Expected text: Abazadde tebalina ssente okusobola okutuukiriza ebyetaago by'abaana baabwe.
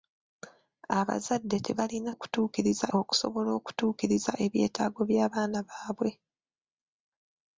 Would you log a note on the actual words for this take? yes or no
yes